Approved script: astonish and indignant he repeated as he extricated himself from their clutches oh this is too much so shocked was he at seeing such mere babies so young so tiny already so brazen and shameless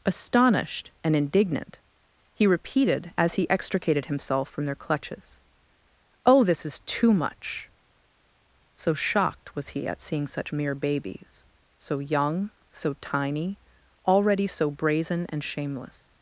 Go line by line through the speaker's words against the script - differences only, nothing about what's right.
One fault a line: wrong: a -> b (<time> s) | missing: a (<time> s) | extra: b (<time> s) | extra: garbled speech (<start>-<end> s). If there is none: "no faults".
wrong: astonish -> astonished (0.0 s)